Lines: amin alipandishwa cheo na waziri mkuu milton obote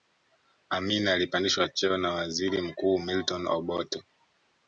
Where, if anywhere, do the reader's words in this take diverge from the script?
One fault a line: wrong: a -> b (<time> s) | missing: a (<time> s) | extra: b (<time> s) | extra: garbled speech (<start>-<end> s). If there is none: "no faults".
no faults